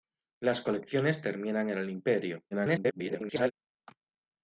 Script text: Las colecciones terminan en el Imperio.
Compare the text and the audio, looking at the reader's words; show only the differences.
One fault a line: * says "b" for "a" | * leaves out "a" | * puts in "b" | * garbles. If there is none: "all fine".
* garbles